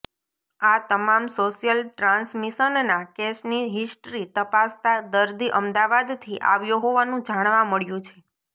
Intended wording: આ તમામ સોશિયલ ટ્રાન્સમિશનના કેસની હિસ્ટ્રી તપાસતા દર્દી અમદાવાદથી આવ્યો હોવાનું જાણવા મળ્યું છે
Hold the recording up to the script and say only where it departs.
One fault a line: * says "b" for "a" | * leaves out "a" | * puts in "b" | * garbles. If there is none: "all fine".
all fine